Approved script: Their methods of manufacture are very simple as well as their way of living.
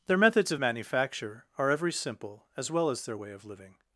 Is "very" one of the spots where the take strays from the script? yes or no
yes